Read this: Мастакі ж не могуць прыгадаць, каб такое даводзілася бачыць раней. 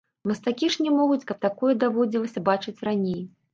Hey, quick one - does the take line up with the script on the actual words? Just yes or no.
no